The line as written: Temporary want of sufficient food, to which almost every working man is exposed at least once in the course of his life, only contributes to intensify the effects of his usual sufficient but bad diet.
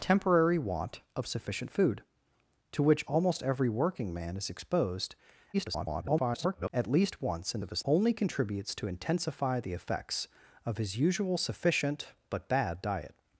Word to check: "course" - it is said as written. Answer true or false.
false